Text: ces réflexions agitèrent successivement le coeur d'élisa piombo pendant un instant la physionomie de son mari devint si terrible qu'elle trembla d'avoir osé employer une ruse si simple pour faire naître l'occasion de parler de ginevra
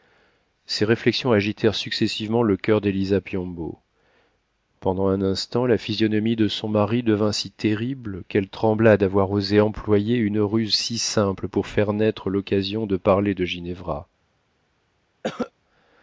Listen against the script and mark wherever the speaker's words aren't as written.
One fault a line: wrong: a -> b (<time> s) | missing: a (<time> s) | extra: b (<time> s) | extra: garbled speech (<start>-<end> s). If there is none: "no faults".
no faults